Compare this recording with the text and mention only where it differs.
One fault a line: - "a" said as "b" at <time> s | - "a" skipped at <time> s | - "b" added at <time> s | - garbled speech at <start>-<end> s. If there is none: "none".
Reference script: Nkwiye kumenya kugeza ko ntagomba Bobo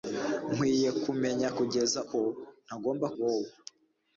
none